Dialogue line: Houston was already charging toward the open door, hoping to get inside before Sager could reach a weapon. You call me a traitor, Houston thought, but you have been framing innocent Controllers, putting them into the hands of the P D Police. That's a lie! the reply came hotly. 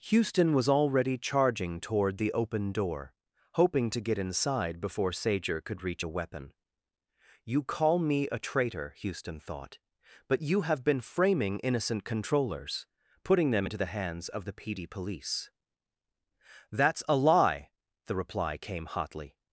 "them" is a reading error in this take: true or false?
false